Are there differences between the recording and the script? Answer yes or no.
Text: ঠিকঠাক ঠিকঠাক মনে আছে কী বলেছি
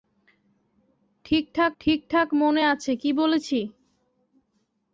no